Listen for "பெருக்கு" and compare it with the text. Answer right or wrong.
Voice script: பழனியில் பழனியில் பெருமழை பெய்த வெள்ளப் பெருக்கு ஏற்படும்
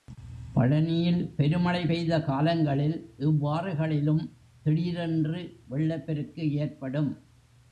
right